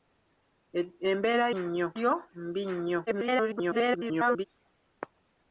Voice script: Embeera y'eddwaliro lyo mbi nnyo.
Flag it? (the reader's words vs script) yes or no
yes